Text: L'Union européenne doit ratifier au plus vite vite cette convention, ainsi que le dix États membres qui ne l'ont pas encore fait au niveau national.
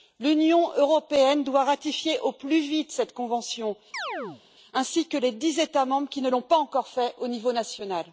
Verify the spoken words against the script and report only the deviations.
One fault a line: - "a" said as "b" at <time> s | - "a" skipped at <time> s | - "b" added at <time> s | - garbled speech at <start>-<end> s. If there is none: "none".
- "vite" skipped at 2.9 s
- "le" said as "les" at 5.2 s